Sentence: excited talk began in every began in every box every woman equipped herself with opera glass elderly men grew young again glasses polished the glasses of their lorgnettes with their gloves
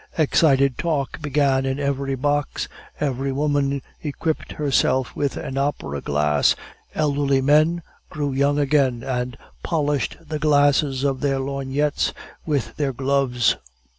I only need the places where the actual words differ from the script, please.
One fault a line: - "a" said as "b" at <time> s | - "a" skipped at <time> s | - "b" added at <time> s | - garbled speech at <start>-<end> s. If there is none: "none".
- "began in every" skipped at 2.1 s
- "an" added at 5.4 s
- "glasses" said as "and" at 9.0 s